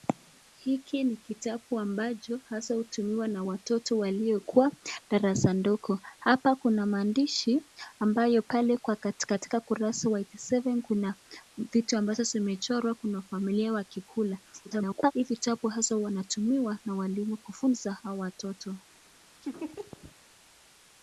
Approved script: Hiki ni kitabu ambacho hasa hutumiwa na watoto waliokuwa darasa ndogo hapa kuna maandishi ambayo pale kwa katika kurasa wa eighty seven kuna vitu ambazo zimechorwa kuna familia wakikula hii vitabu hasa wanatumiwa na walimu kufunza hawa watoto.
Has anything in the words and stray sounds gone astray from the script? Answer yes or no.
yes